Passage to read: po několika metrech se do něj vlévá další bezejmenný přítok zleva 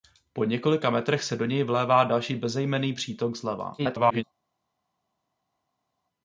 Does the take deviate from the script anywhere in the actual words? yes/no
yes